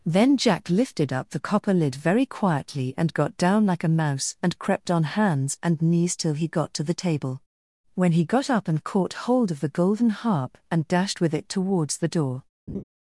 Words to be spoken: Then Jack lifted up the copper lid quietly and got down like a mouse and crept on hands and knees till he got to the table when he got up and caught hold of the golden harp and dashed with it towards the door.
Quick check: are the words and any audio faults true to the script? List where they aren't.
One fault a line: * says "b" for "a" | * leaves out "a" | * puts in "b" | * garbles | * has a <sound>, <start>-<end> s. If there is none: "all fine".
* puts in "very"
* has a laugh, 12.7-12.8 s